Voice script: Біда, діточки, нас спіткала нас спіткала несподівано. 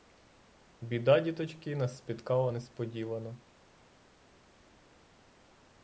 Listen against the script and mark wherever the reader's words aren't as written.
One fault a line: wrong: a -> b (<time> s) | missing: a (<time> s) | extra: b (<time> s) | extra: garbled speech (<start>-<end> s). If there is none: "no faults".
missing: нас спіткала (2.5 s)